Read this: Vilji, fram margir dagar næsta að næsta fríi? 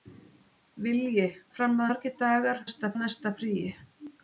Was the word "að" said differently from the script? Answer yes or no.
no